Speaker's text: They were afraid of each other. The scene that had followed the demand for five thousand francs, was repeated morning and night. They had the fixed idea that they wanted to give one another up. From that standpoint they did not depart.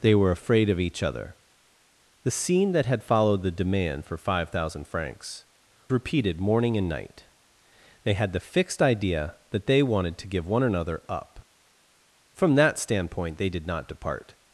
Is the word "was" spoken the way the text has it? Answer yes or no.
no